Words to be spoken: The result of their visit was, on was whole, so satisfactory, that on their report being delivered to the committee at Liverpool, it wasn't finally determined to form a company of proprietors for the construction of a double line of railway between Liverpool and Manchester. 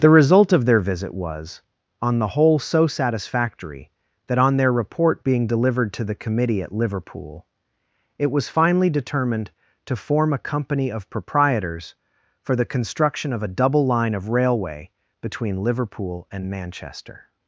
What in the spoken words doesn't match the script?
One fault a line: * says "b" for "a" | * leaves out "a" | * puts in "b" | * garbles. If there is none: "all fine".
* says "the" for "was"
* says "was" for "wasn't"